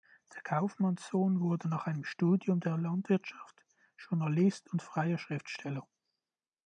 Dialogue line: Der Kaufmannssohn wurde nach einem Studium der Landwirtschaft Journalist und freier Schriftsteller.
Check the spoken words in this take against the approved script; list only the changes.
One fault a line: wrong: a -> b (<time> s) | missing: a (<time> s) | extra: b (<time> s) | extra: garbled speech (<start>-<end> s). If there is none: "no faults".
no faults